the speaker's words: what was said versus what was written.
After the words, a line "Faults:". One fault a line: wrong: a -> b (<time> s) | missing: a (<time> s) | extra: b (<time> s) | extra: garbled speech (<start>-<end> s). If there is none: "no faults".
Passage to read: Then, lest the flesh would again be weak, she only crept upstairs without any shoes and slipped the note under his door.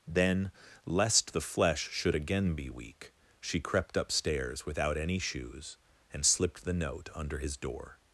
Then, lest the flesh should again be weak, she crept upstairs without any shoes and slipped the note under his door.
Faults:
wrong: would -> should (1.9 s)
missing: only (3.6 s)